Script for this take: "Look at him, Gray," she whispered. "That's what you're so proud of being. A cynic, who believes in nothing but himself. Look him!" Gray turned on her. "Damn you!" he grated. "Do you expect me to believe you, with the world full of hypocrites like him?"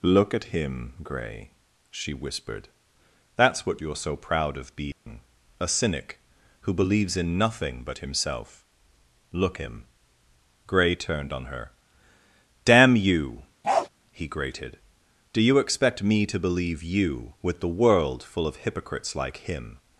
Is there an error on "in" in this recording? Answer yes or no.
no